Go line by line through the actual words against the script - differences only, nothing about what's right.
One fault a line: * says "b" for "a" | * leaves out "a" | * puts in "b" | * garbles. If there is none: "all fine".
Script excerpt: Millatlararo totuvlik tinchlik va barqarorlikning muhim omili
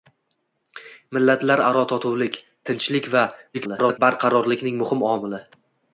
* garbles